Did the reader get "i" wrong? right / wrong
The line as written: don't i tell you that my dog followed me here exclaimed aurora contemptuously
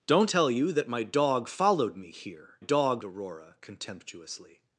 wrong